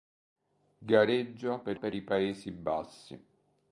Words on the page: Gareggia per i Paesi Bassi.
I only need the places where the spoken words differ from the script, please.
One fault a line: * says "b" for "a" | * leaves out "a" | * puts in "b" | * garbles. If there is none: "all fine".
* puts in "per"